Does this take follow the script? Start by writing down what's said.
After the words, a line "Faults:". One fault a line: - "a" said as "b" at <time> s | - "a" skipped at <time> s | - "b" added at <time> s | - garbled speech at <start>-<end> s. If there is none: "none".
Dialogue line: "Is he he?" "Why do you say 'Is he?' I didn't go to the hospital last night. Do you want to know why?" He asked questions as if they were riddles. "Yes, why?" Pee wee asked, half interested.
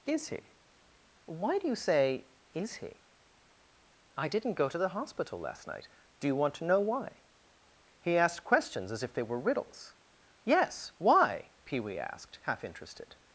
"Is he?" "Why do you say 'Is he?' I didn't go to the hospital last night. Do you want to know why?" He asked questions as if they were riddles. "Yes, why?" Pee wee asked, half interested.
Faults:
- "he" skipped at 0.5 s